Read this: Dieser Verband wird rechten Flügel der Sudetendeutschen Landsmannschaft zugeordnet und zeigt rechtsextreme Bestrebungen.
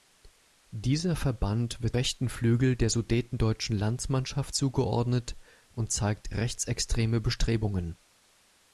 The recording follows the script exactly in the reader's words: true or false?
true